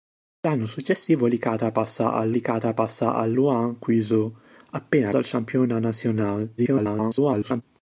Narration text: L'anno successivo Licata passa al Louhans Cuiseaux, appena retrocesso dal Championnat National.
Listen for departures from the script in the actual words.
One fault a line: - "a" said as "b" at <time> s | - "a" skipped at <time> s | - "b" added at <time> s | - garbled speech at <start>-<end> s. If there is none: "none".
- "Licata passa al" added at 2.3 s
- "retrocesso" skipped at 5.1 s
- garbled speech at 6.6-7.6 s